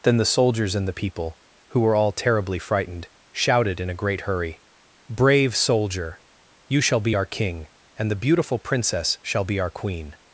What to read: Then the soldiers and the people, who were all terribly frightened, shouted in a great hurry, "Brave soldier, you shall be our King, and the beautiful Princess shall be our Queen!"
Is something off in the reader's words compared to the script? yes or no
no